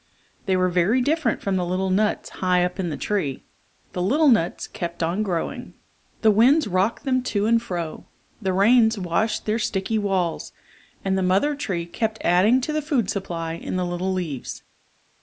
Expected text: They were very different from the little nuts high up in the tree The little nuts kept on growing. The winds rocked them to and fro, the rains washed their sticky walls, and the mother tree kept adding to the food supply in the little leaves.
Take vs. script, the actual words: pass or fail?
pass